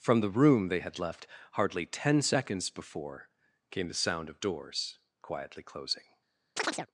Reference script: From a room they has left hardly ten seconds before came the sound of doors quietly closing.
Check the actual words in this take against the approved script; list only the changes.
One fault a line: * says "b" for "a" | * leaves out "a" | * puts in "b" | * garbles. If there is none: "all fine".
* says "the" for "a"
* says "had" for "has"